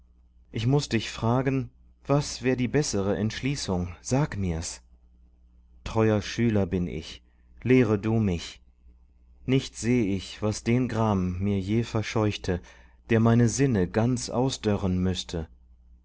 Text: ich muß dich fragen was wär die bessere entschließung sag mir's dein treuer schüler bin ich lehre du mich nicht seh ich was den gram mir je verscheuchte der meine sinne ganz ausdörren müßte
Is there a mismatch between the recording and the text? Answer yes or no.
yes